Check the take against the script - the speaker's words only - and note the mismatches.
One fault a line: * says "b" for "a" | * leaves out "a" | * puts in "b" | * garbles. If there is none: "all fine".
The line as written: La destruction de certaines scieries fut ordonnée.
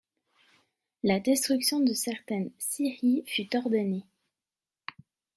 all fine